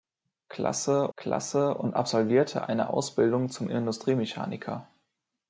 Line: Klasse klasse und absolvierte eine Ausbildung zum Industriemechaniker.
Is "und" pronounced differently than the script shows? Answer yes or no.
no